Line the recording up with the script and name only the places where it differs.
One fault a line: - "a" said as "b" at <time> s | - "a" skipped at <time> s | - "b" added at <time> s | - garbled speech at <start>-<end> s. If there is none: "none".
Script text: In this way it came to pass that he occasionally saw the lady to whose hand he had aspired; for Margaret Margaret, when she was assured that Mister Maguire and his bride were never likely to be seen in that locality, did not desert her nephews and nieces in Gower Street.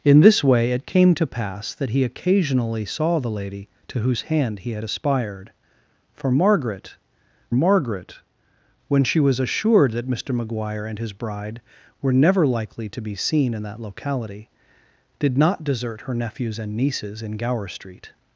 none